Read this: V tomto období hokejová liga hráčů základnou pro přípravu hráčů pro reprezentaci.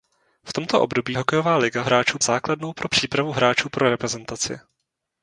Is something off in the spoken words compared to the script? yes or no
no